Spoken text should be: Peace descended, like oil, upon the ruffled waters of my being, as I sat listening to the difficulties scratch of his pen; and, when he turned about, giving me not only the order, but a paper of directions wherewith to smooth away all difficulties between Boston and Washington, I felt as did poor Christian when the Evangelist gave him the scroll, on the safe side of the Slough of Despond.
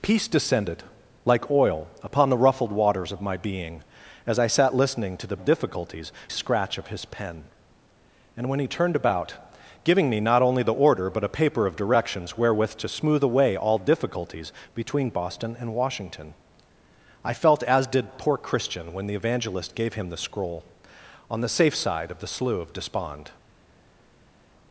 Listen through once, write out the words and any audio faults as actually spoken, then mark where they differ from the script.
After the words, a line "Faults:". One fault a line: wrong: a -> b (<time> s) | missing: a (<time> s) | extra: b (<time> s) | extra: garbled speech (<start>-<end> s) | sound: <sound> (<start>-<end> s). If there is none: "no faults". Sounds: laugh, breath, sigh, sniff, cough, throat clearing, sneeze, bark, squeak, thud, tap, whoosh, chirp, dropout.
Peace descended, like oil, upon the ruffled waters of my being, as I sat listening to the difficulties scratch of his pen; and, when he turned about, giving me not only the order, but a paper of directions wherewith to smooth away all difficulties between Boston and Washington, I felt as did poor Christian when the Evangelist gave him the scroll, on the safe side of the Slough of Despond.
Faults:
no faults